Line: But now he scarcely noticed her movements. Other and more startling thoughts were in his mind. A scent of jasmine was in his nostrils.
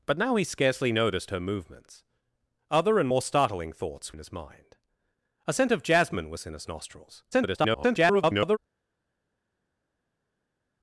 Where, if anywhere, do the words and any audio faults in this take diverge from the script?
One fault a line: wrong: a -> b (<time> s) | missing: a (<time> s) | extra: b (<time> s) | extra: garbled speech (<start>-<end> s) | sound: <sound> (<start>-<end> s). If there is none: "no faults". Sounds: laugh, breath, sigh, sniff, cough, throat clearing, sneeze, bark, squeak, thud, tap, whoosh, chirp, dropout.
missing: were (4.2 s)
extra: garbled speech (7.3-8.6 s)